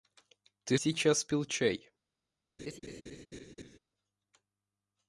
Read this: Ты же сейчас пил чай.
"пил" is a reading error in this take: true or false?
false